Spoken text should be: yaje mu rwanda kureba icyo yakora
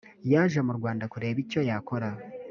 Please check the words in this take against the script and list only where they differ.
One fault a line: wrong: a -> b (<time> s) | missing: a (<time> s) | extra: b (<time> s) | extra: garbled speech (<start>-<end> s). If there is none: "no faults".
no faults